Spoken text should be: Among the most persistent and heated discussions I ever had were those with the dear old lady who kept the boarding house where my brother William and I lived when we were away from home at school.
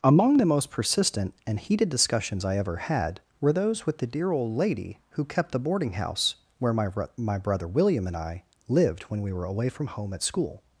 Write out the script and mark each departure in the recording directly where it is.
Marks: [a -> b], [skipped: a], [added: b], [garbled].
Among the most persistent and heated discussions I ever had were those with the dear old lady who kept the boarding house where my [added: my] brother William and I lived when we were away from home at school.